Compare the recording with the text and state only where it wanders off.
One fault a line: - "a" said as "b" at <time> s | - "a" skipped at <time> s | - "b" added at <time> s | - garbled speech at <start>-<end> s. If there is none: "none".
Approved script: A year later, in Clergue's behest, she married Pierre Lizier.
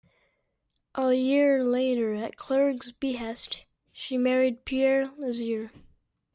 - "in" said as "at" at 2.1 s